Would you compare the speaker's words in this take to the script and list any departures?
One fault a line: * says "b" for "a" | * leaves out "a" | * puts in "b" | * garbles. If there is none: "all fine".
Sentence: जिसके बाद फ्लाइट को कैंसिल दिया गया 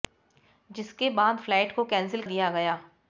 all fine